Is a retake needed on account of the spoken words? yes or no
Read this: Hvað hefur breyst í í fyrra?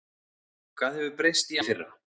no